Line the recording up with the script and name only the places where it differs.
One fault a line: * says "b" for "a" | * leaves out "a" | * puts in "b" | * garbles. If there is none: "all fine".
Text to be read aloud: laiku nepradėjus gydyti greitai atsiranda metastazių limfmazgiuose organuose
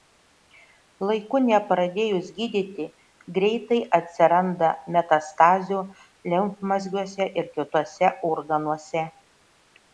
* puts in "ir kituose"